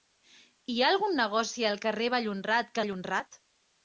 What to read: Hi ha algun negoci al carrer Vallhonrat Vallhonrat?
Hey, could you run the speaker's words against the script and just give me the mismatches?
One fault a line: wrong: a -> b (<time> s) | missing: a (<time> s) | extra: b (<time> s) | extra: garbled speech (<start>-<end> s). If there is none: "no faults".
no faults